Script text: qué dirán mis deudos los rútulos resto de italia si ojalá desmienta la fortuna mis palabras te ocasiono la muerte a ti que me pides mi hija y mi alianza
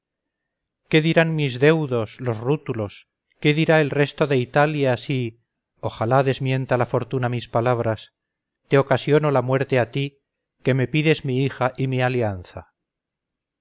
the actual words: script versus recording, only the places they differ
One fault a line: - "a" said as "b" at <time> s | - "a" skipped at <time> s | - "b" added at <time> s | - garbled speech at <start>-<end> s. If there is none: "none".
- "qué dirá el" added at 3.4 s